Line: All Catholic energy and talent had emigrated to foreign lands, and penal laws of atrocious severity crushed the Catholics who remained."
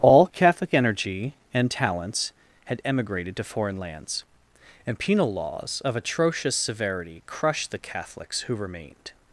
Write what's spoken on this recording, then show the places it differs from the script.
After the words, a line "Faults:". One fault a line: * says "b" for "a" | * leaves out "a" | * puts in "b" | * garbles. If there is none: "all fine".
All Catholic energy and talents had emigrated to foreign lands, and penal laws of atrocious severity crushed the Catholics who remained."
Faults:
* says "talents" for "talent"